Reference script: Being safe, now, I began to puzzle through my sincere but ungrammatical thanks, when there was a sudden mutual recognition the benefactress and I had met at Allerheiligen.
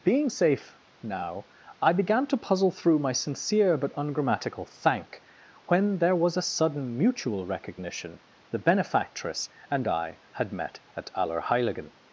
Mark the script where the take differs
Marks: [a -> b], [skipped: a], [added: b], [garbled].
Being safe, now, I began to puzzle through my sincere but ungrammatical [thanks, -> thank] when there was a sudden mutual recognition the benefactress and I had met at Allerheiligen.